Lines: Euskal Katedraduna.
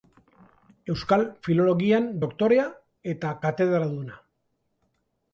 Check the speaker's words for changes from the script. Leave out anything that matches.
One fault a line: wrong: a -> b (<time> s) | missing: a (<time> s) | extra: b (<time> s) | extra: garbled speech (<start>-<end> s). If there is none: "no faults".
extra: Filologian doktorea eta (1.5 s)